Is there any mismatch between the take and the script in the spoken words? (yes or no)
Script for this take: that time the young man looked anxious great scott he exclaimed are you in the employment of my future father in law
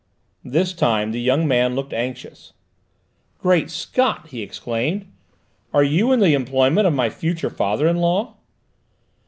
yes